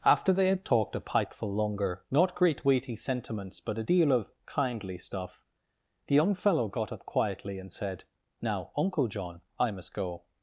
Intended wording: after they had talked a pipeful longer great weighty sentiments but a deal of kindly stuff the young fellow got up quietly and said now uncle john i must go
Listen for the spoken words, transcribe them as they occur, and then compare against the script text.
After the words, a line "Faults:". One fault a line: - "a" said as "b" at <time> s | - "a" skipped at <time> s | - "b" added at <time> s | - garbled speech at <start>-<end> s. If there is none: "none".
after they had talked a pipeful longer not great weighty sentiments but a deal of kindly stuff the young fellow got up quietly and said now uncle john i must go
Faults:
- "not" added at 2.1 s